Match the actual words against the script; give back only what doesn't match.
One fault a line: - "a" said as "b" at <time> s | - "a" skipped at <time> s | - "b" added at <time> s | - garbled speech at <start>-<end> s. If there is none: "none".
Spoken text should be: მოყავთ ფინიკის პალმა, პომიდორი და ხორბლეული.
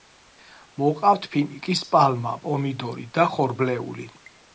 none